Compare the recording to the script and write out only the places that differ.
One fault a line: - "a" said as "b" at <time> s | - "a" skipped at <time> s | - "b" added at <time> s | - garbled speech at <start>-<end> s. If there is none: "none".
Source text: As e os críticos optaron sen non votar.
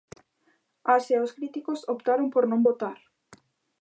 - "sen" said as "por" at 2.3 s